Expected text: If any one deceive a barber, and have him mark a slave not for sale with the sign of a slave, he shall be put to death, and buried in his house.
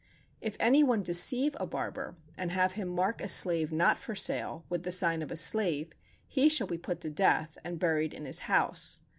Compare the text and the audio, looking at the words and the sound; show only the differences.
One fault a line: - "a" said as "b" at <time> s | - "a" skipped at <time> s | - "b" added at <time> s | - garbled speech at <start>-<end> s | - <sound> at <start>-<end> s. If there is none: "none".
none